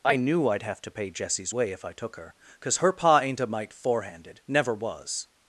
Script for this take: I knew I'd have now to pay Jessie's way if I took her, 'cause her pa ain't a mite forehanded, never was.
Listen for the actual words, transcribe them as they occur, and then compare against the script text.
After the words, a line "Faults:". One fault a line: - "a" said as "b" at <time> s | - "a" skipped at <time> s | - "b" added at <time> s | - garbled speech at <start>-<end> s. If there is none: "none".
I knew I'd have to pay Jessie's way if I took her, 'cause her pa ain't a mite forehanded, never was.
Faults:
- "now" skipped at 0.8 s